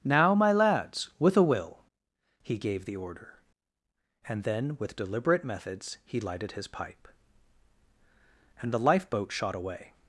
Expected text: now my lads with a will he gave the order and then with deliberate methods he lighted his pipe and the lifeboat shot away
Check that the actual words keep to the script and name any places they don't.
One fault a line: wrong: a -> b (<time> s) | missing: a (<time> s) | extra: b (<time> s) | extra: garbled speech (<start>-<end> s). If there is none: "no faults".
no faults